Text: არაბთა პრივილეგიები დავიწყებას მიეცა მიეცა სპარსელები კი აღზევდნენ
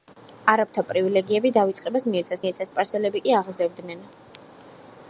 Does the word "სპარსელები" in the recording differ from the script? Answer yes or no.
no